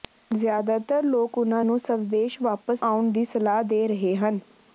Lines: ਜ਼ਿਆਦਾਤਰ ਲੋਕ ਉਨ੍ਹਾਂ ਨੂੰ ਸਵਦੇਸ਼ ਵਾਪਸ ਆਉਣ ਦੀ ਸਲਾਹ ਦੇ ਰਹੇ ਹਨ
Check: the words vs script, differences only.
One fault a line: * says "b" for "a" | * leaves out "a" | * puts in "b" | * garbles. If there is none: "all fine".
all fine